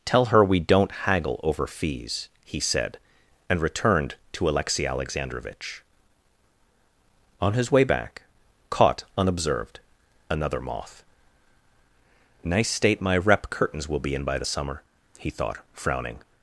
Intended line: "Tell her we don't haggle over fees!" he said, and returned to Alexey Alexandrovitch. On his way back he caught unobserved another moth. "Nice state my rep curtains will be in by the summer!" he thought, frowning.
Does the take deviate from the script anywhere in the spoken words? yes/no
yes